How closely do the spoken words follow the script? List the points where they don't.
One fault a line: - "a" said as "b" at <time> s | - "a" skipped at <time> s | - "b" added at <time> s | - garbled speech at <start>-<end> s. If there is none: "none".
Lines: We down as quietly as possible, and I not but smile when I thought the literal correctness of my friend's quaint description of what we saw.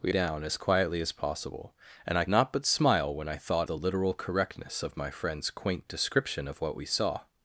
none